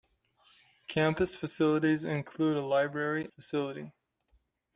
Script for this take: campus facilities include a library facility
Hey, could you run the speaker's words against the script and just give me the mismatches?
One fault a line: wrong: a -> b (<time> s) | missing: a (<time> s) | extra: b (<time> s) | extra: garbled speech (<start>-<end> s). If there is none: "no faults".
no faults